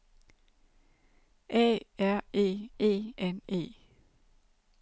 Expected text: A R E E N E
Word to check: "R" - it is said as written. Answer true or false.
true